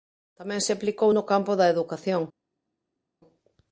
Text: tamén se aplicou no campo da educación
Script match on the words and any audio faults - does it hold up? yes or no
yes